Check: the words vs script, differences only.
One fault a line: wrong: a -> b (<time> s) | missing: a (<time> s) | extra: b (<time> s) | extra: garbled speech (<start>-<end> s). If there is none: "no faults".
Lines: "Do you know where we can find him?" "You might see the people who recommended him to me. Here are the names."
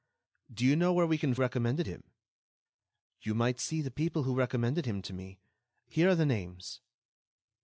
wrong: find -> recommended (1.4 s)